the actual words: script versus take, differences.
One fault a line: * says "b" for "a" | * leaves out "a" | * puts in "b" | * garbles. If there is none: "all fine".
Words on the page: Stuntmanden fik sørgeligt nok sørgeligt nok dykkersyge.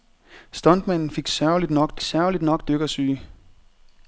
all fine